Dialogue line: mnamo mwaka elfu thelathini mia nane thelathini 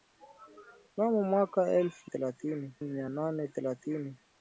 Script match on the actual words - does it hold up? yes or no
yes